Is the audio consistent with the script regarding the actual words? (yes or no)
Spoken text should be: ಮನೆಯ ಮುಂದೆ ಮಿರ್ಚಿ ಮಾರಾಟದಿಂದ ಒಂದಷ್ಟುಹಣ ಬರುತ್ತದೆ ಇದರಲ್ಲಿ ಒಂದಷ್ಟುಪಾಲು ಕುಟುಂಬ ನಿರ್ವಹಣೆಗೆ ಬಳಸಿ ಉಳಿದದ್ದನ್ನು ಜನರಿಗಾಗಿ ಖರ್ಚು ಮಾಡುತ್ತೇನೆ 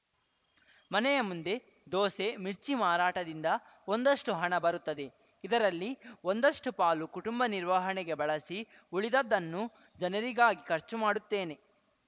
no